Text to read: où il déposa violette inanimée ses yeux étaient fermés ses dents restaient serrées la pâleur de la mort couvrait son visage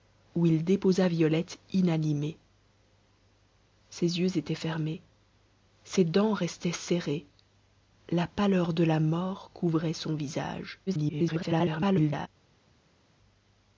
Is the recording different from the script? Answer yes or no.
yes